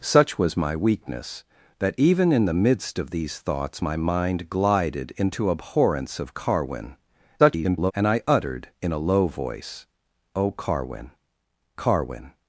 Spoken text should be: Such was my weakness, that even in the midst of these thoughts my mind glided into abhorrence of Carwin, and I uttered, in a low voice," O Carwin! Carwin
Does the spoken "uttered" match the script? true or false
true